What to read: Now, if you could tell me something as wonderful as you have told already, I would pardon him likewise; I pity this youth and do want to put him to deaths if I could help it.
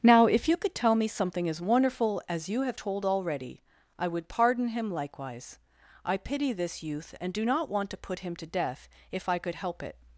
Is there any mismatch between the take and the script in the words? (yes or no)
yes